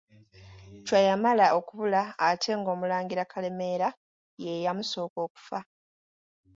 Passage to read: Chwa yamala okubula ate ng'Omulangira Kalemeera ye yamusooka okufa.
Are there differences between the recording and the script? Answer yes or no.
no